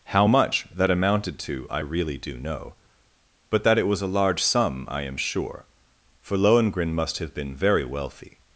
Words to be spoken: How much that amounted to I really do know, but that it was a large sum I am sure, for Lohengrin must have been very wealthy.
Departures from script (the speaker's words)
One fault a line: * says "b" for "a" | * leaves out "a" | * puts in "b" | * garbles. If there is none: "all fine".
all fine